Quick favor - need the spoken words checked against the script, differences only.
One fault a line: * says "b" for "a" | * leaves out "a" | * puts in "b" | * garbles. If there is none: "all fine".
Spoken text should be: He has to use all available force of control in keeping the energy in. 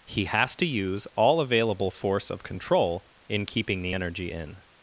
all fine